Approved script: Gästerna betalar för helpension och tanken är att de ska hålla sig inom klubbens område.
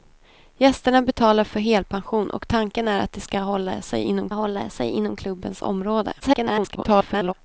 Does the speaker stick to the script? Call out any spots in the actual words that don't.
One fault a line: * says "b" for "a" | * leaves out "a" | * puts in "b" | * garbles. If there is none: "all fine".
* puts in "hålla sig inom"
* garbles